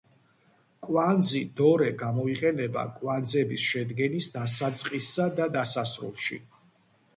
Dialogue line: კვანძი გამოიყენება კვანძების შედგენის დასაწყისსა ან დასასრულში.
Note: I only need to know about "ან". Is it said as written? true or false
false